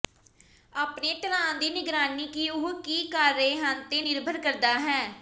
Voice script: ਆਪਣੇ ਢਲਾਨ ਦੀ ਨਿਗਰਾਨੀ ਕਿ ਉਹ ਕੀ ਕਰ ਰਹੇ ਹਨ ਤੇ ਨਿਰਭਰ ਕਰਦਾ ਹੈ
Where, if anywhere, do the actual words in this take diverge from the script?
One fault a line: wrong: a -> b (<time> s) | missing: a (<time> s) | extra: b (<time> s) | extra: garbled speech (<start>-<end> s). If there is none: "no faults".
no faults